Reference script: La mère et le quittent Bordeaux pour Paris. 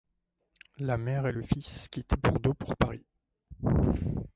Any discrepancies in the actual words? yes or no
yes